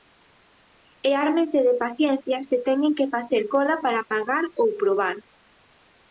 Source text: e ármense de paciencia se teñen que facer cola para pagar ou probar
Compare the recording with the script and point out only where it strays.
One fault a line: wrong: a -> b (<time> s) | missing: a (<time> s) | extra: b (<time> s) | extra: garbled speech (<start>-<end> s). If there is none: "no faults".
no faults